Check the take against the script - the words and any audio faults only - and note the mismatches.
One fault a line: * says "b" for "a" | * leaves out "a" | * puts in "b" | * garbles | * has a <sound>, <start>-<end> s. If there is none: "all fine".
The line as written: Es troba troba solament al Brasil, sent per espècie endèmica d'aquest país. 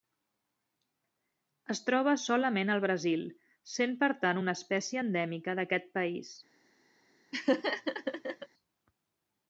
* leaves out "troba"
* puts in "tant una"
* has a laugh, 7.3-8.5 s